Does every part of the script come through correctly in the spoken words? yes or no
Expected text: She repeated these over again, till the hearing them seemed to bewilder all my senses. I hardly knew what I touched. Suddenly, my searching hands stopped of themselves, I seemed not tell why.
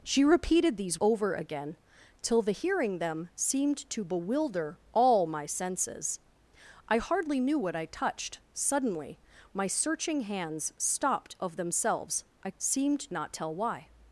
yes